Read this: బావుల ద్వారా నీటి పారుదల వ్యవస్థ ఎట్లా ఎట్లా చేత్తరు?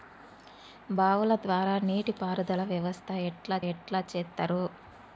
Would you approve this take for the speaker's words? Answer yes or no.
yes